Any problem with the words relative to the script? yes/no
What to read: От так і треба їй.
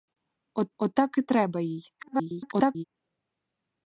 yes